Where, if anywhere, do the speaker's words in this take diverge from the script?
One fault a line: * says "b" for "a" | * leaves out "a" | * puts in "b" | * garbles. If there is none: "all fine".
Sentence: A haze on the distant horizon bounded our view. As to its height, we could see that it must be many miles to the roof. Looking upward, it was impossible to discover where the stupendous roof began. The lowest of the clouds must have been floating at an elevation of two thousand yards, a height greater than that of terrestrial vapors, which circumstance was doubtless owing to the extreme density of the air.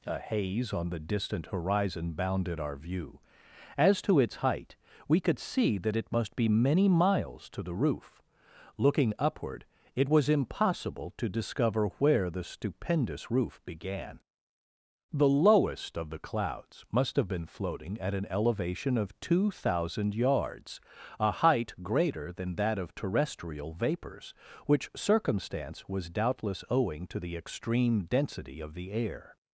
all fine